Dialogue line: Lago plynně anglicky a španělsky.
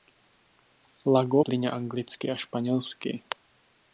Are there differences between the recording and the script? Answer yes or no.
no